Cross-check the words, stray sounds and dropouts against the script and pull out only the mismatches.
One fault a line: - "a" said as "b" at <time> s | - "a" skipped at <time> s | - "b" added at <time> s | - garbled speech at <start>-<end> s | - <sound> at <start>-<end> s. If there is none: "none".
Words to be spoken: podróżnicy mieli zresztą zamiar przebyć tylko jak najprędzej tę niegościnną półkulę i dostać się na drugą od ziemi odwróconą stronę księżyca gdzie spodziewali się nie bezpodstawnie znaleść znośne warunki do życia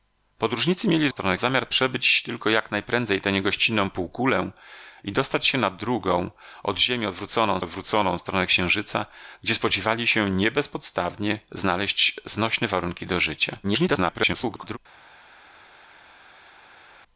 - "zresztą" said as "stronę" at 1.1 s
- "odwróconą" added at 7.6 s
- garbled speech at 13.6-14.8 s